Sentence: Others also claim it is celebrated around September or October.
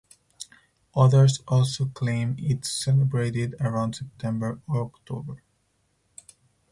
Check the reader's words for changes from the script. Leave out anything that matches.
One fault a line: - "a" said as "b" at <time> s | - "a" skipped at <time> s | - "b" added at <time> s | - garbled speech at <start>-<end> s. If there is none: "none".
none